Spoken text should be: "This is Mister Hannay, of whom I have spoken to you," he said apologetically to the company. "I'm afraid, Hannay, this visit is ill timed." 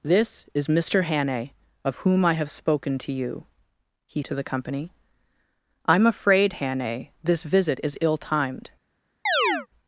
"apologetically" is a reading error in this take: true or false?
true